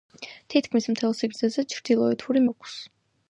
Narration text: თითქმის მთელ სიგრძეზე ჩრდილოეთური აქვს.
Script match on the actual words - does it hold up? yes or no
yes